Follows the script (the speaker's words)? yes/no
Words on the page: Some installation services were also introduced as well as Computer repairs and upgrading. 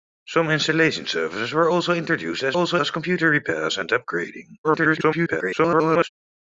no